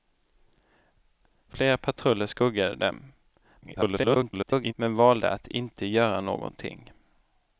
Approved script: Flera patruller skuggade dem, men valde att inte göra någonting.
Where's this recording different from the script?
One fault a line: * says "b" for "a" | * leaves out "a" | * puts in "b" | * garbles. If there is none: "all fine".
* garbles